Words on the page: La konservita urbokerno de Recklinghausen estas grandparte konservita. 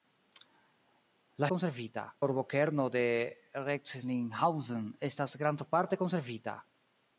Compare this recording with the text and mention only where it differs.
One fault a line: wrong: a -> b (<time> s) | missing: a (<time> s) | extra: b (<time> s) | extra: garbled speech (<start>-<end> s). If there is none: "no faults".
no faults